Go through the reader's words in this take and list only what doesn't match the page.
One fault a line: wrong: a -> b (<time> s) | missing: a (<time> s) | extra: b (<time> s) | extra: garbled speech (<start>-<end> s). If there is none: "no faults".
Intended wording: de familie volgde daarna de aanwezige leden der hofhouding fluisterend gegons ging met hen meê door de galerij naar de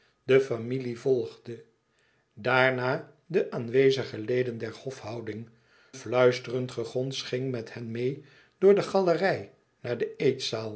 no faults